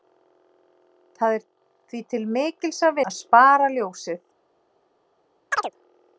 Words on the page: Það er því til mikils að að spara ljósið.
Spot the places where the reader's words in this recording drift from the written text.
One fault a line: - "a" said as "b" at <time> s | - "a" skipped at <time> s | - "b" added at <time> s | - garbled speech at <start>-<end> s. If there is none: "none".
none